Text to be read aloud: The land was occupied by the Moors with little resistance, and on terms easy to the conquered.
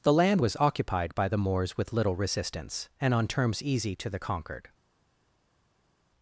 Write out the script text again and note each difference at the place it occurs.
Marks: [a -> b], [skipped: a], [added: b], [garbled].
The land was occupied by the Moors with little resistance, and on terms easy to the conquered.